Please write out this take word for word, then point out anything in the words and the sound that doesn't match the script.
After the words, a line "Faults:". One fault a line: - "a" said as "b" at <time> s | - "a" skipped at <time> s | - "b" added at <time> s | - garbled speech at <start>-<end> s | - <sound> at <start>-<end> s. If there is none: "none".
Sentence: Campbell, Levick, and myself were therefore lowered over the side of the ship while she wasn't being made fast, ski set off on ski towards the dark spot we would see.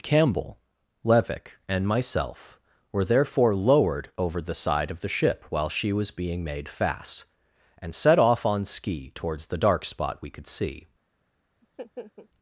Campbell, Levick, and myself were therefore lowered over the side of the ship while she was being made fast, and set off on ski towards the dark spot we could see.
Faults:
- "wasn't" said as "was" at 5.9 s
- "ski" said as "and" at 7.8 s
- "would" said as "could" at 10.3 s
- laugh at 11.6-12.3 s